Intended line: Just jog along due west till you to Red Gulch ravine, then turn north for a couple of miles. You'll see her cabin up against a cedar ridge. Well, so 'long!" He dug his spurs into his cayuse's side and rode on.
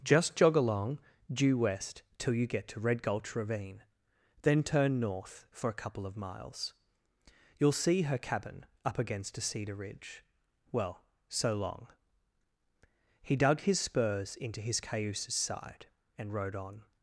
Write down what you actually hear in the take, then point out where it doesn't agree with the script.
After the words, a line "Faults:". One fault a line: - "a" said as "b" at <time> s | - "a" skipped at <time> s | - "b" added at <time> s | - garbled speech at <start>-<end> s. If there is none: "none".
Just jog along due west till you get to Red Gulch ravine, then turn north for a couple of miles. You'll see her cabin up against a cedar ridge. Well, so 'long!" He dug his spurs into his cayuse's side and rode on.
Faults:
- "get" added at 2.5 s